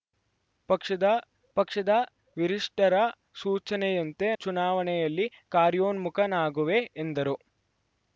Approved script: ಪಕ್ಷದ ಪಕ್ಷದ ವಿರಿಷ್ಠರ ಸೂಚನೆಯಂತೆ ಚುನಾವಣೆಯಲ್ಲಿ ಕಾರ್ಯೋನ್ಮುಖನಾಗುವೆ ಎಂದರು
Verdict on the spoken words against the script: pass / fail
pass